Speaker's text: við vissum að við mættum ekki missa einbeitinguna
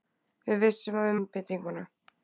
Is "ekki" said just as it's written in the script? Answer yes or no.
no